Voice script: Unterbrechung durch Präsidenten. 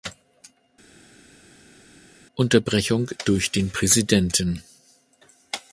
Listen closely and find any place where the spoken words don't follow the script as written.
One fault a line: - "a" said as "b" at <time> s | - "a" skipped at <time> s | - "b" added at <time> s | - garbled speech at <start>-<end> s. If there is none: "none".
- "den" added at 3.5 s